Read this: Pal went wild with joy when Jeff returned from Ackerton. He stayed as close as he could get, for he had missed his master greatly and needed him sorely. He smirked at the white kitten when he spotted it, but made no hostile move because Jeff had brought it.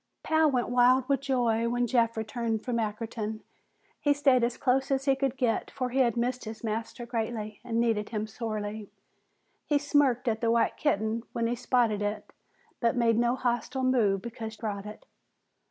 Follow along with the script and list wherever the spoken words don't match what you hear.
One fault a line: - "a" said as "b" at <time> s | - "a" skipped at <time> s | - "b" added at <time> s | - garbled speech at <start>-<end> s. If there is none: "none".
- "Jeff had" skipped at 14.6 s